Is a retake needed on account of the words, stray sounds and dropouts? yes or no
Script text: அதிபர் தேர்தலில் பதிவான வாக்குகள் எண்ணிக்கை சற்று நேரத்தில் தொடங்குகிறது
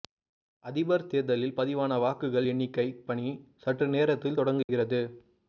yes